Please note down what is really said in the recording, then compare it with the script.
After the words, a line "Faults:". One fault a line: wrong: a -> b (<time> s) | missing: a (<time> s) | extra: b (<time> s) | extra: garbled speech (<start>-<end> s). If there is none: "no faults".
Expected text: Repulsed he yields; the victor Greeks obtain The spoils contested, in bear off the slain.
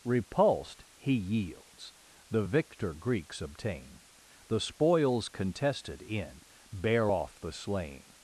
Repulsed he yields; the victor Greeks obtain The spoils contested, in bear off the slain.
Faults:
no faults